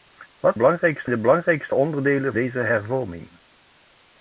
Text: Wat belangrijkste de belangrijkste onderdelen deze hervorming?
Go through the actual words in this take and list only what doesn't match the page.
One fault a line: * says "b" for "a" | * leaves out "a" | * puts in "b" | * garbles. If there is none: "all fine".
all fine